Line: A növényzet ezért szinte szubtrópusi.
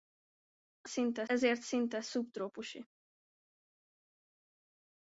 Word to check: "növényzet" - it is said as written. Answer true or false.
false